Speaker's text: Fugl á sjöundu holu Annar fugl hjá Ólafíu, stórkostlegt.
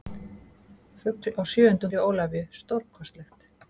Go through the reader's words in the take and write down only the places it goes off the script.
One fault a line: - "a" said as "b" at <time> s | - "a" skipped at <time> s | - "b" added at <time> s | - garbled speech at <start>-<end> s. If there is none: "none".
- "holu Annar fugl" skipped at 1.9 s